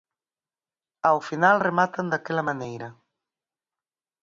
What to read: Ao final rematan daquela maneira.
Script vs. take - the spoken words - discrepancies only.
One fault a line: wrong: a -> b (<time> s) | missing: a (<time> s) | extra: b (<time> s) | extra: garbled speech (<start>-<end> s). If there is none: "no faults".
no faults